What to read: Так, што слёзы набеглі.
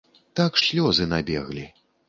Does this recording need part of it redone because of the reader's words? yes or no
yes